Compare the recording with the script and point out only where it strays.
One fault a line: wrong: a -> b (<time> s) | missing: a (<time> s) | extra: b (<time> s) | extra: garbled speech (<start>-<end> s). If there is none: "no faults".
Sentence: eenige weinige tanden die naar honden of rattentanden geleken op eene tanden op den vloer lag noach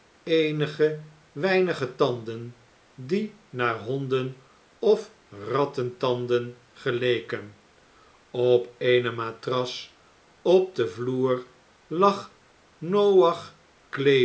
wrong: tanden -> matras (9.1 s)